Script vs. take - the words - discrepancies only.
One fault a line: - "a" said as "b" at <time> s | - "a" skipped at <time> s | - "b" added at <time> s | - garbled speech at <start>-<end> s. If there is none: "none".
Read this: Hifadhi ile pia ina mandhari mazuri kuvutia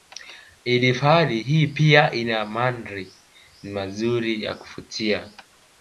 - "ile" said as "hii" at 1.4 s
- "ya" added at 4.4 s